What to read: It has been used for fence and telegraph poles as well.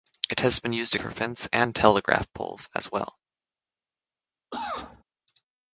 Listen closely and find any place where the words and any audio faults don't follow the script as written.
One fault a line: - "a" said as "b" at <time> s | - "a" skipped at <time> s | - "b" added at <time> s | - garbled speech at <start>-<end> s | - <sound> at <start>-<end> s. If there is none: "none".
- cough at 4.5-5.0 s